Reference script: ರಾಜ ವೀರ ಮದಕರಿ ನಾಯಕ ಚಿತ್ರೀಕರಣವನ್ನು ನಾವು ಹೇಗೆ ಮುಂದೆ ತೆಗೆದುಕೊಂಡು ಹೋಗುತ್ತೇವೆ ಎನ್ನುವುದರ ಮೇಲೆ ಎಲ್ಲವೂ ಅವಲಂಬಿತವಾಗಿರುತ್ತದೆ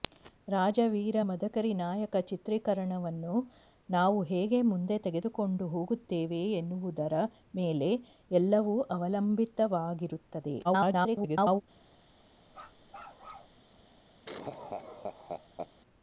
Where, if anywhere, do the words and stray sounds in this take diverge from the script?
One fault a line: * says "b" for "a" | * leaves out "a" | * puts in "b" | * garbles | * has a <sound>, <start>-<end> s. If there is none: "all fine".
* garbles
* has a bark, 12.5-13.6 s
* has a laugh, 14.3-15.7 s